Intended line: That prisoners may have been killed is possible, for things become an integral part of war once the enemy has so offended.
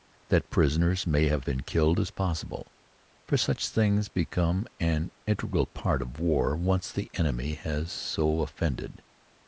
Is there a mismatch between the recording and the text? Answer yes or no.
yes